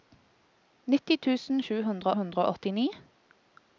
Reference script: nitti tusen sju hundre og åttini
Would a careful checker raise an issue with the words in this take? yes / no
yes